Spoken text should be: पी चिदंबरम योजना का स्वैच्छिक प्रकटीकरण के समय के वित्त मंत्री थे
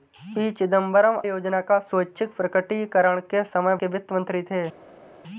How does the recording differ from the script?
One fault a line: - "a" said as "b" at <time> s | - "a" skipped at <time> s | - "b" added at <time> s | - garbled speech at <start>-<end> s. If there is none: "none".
none